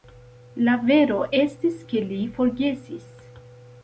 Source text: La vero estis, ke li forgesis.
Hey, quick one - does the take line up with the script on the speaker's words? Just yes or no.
yes